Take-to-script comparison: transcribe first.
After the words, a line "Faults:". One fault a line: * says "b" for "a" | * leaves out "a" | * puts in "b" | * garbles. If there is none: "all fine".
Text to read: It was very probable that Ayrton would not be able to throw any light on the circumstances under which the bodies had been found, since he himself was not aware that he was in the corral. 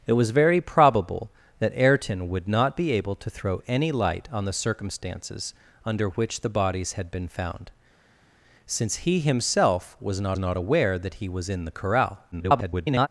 It was very probable that Ayrton would not be able to throw any light on the circumstances under which the bodies had been found, since he himself was not not aware that he was in the corral. [garbled]
Faults:
* puts in "not"
* garbles